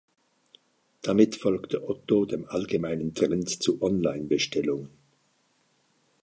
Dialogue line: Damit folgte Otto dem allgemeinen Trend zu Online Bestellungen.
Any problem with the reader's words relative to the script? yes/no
no